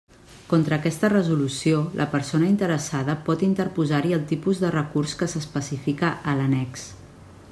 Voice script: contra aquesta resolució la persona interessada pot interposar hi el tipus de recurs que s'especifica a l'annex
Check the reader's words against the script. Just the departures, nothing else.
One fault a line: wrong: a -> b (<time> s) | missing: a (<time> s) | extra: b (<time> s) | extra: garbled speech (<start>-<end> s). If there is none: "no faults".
no faults